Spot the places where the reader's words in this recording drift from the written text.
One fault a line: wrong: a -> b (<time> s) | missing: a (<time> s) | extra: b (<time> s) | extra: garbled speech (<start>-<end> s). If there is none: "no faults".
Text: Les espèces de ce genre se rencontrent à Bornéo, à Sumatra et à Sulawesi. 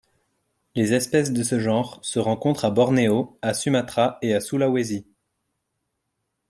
no faults